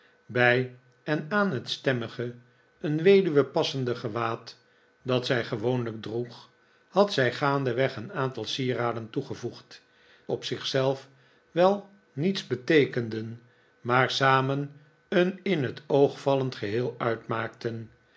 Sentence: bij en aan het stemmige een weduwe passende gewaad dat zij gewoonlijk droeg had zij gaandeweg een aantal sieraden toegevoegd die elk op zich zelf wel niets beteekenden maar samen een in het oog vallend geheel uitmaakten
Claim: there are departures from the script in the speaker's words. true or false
true